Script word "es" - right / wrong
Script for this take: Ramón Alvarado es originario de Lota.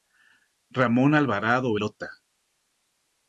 wrong